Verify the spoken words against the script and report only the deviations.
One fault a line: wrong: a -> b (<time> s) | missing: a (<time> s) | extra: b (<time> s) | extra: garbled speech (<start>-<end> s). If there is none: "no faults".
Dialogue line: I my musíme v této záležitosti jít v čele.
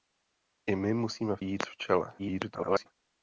missing: této záležitosti (1.4 s)
extra: garbled speech (2.2-2.9 s)